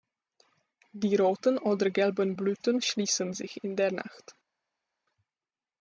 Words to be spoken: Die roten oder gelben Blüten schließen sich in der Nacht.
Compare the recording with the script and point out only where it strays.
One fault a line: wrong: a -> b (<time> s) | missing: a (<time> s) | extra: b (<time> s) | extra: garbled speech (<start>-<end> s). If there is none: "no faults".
no faults